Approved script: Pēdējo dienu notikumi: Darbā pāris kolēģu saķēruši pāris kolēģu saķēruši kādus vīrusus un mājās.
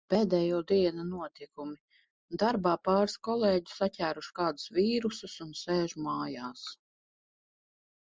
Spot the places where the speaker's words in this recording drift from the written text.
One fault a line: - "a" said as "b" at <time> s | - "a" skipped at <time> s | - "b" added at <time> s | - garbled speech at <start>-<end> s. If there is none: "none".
- "pāris kolēģu saķēruši" skipped at 4.3 s
- "sēž" added at 5.6 s